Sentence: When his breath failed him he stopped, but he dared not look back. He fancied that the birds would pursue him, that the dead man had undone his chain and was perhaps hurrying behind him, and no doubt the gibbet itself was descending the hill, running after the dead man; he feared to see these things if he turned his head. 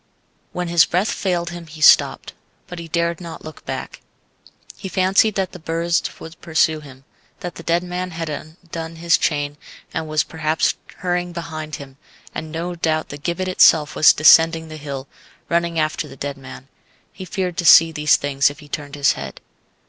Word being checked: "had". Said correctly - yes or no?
yes